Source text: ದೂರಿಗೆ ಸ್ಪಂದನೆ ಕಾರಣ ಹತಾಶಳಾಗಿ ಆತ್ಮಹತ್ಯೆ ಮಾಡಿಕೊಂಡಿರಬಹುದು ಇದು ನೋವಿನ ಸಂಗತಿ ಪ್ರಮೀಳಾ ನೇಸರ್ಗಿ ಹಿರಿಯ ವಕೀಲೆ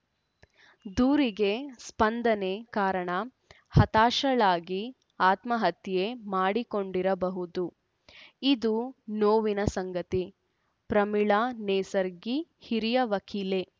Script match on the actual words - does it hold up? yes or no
yes